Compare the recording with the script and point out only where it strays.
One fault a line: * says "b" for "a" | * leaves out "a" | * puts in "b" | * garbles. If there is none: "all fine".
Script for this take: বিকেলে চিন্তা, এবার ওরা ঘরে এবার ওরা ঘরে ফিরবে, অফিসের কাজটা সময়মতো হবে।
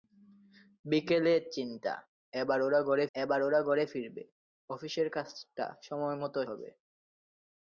all fine